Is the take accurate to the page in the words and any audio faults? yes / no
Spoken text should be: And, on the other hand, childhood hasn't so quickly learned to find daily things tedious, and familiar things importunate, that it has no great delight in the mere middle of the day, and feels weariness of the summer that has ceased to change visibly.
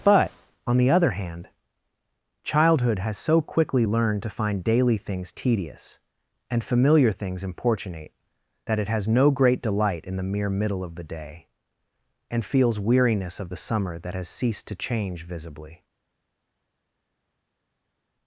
no